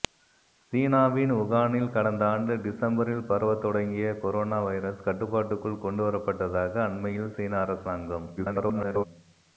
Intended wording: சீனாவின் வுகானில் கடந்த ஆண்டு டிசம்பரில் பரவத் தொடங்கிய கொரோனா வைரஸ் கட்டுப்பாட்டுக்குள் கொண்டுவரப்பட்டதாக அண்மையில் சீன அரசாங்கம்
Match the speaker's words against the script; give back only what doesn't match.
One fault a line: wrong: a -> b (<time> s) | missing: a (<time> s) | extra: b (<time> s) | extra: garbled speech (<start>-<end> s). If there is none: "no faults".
extra: garbled speech (8.4-9.0 s)